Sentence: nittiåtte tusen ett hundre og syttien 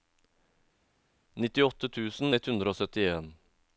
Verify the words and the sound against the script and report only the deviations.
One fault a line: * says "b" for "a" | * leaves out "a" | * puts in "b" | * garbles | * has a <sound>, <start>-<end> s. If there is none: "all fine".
all fine